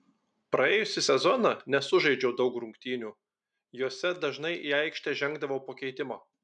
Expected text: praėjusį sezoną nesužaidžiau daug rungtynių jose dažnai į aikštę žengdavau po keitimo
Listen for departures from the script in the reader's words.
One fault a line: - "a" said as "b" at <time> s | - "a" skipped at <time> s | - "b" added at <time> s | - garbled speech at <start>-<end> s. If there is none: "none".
none